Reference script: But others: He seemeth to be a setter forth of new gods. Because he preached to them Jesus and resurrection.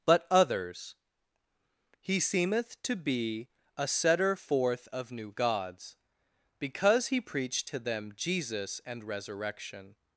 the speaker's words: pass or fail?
pass